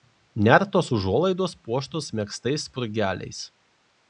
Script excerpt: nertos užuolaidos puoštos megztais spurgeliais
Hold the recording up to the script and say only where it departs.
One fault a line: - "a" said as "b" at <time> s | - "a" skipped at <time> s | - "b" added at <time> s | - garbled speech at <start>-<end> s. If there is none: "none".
none